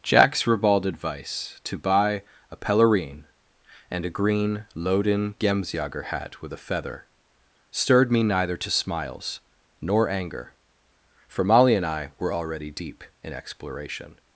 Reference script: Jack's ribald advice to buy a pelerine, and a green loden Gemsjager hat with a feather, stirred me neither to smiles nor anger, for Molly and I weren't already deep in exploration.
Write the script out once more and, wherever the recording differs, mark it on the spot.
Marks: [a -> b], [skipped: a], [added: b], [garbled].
Jack's ribald advice to buy a pelerine, and a green loden Gemsjager hat with a feather, stirred me neither to smiles nor anger, for Molly and I [weren't -> were] already deep in exploration.